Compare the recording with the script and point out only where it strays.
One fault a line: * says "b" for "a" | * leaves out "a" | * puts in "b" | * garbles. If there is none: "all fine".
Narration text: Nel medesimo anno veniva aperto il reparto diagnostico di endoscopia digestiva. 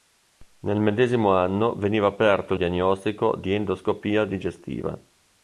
* leaves out "il reparto"